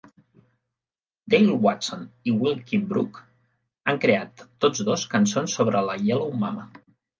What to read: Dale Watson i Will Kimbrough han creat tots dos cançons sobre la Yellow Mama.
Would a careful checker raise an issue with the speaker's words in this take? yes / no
no